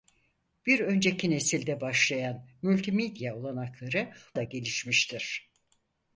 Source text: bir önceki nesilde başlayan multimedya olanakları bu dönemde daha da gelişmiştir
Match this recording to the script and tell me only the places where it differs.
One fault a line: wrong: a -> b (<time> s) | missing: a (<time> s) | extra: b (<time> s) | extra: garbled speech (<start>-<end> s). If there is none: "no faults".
missing: bu dönemde daha (4.1 s)